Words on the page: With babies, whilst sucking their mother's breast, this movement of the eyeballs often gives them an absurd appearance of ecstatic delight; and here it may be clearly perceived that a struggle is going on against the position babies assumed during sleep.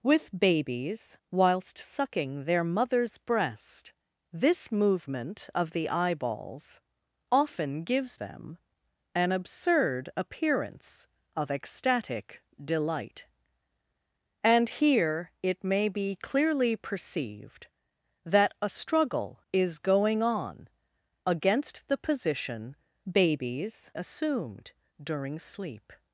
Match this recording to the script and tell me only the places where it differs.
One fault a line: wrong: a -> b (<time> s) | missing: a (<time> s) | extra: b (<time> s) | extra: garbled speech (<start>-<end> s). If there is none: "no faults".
no faults